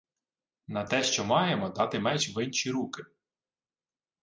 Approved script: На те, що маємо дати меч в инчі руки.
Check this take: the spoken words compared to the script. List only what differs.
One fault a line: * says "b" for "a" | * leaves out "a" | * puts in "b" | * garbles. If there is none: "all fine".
all fine